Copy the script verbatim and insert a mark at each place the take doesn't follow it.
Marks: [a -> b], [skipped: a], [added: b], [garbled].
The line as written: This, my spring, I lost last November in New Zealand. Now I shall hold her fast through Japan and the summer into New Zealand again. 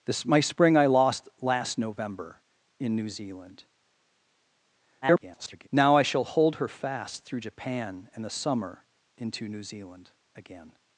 This, my spring, I lost last November in New Zealand. [garbled] Now I shall hold her fast through Japan and the summer into New Zealand again.